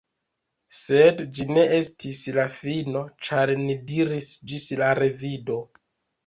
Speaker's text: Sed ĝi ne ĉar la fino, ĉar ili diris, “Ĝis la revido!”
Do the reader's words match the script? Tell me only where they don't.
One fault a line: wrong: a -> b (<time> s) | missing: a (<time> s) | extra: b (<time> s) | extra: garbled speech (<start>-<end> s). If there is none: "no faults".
wrong: ĉar -> estis (1.8 s)
wrong: ili -> ni (3.6 s)